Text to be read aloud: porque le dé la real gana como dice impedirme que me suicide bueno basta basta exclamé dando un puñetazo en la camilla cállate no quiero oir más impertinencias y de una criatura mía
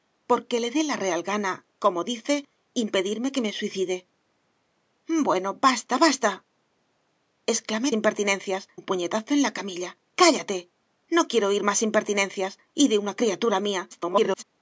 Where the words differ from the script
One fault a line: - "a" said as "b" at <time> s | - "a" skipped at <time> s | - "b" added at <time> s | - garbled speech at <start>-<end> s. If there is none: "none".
- "dando" said as "impertinencias" at 8.0 s
- garbled speech at 13.9-14.4 s